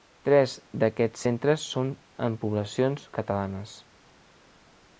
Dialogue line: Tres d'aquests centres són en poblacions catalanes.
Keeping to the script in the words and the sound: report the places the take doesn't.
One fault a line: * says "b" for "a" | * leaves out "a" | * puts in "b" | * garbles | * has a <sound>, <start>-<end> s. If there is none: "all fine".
all fine